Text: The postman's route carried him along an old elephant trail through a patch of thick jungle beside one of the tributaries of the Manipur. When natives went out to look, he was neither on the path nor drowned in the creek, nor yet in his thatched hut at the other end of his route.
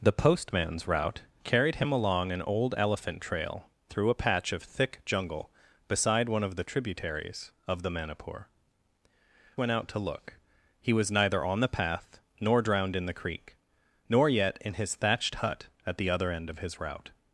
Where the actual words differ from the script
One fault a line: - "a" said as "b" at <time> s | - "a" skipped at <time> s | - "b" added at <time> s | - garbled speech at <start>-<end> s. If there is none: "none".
- "When natives" skipped at 8.5 s